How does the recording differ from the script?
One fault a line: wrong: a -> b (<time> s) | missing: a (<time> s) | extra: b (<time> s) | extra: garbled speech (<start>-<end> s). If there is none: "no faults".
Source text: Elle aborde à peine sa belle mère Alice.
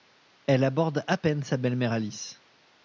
no faults